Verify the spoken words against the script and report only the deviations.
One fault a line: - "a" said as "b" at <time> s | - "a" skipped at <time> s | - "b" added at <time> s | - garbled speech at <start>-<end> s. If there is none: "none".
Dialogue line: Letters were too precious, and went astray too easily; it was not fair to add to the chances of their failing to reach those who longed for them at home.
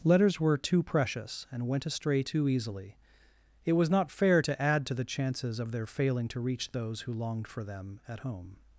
none